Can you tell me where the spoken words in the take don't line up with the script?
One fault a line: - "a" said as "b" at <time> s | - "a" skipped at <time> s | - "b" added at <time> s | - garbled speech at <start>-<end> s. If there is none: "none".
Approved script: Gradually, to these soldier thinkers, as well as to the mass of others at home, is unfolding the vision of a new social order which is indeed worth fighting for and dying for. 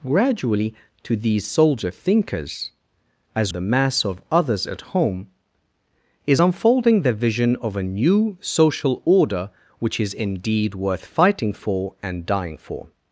- "well as to" skipped at 3.5 s